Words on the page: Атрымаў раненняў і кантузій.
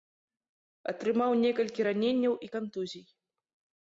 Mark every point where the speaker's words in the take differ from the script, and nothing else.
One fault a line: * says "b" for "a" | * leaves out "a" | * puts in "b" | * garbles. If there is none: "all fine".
* puts in "некалькі"